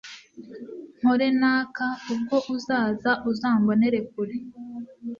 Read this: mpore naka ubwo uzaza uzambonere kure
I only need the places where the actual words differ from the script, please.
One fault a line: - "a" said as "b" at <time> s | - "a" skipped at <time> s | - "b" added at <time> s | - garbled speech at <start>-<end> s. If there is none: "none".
none